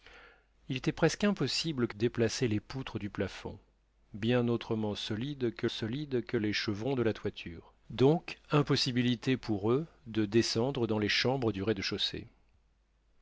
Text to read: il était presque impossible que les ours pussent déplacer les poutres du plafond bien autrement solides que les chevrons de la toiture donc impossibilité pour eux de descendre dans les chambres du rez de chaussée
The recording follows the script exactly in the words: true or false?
false